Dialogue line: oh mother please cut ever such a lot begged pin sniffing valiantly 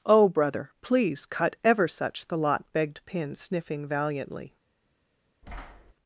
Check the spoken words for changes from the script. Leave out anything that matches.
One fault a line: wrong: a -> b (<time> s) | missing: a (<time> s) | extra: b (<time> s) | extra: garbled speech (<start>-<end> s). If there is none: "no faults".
wrong: mother -> brother (0.3 s)
wrong: a -> the (2.3 s)